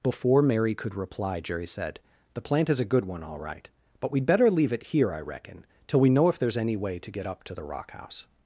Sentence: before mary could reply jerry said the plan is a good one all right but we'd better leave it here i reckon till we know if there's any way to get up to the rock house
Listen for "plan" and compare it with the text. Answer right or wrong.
wrong